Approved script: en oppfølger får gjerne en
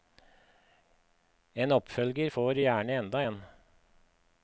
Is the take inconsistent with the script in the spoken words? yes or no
yes